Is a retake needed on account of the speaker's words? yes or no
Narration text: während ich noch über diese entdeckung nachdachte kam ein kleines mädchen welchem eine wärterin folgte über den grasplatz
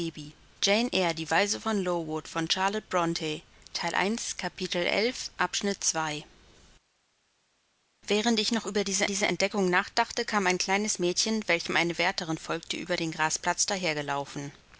yes